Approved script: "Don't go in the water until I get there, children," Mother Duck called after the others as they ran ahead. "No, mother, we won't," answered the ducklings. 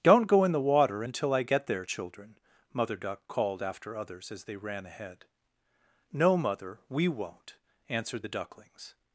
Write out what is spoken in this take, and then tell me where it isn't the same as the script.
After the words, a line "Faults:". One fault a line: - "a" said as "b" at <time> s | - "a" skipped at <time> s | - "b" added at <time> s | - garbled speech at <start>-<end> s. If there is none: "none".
"Don't go in the water until I get there, children," Mother Duck called after others as they ran ahead. "No, mother, we won't," answered the ducklings.
Faults:
- "the" skipped at 4.0 s